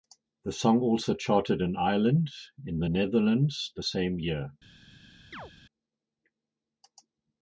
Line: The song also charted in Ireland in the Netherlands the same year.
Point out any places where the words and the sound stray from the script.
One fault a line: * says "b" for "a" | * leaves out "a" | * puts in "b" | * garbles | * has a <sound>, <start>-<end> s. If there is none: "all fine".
* has a chirp, 5.3-5.5 s